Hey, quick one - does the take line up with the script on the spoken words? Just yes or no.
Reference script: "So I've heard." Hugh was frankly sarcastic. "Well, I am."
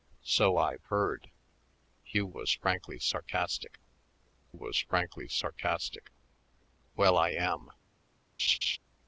no